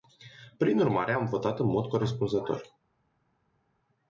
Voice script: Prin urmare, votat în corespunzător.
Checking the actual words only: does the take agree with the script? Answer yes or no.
no